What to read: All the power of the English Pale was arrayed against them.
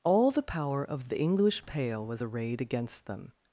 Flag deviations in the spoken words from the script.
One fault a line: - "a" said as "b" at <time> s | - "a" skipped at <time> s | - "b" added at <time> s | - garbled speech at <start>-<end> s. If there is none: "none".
none